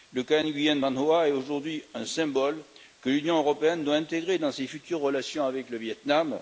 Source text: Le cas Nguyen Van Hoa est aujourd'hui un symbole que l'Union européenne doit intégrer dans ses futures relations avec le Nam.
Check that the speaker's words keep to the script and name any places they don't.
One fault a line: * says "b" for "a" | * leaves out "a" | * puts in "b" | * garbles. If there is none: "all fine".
* puts in "Viêt"